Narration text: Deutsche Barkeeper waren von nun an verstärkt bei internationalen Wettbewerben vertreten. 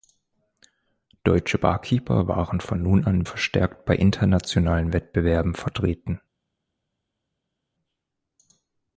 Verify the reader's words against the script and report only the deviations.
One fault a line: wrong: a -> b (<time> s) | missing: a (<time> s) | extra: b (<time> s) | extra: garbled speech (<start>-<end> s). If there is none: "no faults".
no faults